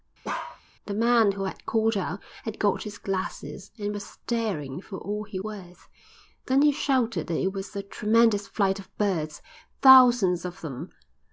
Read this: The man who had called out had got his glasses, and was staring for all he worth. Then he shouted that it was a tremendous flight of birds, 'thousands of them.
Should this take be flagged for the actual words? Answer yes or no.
no